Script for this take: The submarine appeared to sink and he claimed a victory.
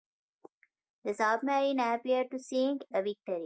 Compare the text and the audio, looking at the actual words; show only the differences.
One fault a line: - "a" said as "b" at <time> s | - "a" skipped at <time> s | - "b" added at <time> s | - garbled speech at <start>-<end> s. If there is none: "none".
- "and he claimed" skipped at 2.8 s